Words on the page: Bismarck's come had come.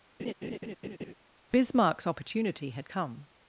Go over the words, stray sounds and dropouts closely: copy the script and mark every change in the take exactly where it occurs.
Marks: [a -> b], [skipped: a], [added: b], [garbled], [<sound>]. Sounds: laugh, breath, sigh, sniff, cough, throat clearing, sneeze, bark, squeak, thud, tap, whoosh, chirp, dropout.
[laugh] Bismarck's [come -> opportunity] had come.